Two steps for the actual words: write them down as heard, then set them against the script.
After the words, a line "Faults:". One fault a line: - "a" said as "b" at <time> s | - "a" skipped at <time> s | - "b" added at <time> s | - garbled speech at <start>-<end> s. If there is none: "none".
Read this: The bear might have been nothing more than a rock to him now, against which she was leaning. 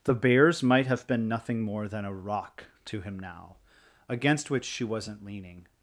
The bears might have been nothing more than a rock to him now, against which she wasn't leaning.
Faults:
- "bear" said as "bears" at 0.1 s
- "was" said as "wasn't" at 4.8 s